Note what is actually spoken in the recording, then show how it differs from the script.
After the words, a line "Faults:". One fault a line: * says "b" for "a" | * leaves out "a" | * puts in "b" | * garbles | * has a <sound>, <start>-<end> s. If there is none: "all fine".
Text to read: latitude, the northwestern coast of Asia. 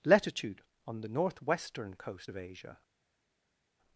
latitude, on the northwestern coast of Asia.
Faults:
* puts in "on"